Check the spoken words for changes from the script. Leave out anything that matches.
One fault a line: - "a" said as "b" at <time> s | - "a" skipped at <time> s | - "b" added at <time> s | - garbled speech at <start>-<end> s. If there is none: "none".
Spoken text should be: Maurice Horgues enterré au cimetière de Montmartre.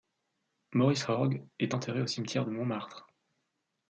- "est" added at 1.6 s